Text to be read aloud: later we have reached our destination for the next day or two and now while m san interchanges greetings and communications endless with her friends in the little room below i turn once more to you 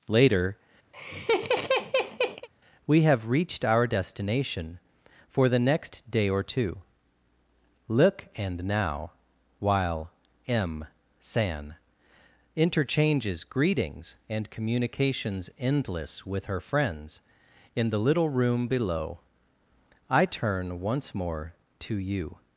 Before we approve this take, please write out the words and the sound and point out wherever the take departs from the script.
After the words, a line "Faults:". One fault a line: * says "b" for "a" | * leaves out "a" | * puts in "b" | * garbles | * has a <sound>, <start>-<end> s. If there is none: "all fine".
later we have reached our destination for the next day or two look and now while m san interchanges greetings and communications endless with her friends in the little room below i turn once more to you
Faults:
* has a laugh, 0.9-2.5 s
* puts in "look"